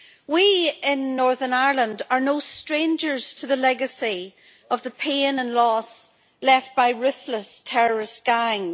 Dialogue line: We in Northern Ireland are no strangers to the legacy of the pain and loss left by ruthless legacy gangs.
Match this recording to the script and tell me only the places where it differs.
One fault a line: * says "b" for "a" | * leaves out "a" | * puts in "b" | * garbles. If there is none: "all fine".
* says "terrorist" for "legacy"